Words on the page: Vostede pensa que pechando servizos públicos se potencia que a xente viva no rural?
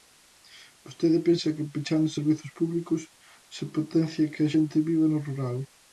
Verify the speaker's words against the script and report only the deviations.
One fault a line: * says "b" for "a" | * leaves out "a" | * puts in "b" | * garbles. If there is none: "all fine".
all fine